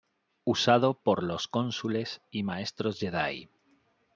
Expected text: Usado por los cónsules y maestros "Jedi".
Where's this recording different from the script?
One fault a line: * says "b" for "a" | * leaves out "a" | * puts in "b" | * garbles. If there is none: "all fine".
all fine